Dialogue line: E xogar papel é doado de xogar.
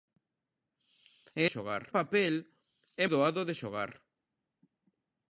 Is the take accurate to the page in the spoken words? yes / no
yes